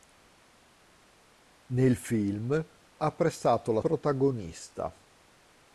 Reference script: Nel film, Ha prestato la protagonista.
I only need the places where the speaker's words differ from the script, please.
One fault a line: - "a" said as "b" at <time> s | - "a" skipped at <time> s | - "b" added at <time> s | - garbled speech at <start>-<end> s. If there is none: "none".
none